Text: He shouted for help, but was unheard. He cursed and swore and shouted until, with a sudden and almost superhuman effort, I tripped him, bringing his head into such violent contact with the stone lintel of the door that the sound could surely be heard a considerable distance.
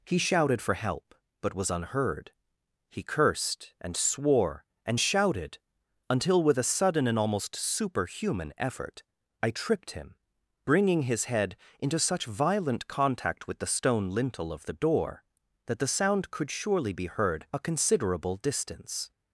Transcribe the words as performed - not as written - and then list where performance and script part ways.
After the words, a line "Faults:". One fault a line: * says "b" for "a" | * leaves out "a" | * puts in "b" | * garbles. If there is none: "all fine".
He shouted for help, but was unheard. He cursed and swore and shouted until, with a sudden and almost superhuman effort, I tripped him, bringing his head into such violent contact with the stone lintel of the door that the sound could surely be heard a considerable distance.
Faults:
all fine